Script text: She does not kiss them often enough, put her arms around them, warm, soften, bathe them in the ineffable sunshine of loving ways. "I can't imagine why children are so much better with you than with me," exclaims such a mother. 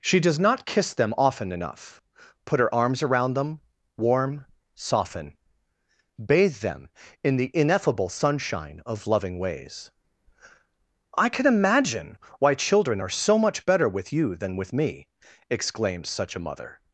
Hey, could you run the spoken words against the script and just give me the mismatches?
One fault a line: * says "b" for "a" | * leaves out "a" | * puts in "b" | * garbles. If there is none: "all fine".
* says "can" for "can't"